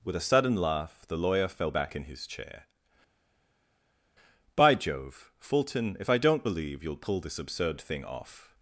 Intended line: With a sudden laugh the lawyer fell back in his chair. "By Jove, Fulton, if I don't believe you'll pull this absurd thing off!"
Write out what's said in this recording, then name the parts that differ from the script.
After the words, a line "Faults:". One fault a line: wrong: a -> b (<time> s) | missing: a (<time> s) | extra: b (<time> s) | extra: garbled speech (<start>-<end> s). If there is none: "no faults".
With a sudden laugh the lawyer fell back in his chair. "By Jove, Fulton, if I don't believe you'll pull this absurd thing off!"
Faults:
no faults